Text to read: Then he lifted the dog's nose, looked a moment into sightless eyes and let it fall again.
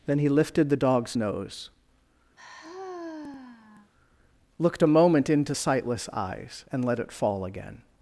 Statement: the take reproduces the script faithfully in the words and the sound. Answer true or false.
false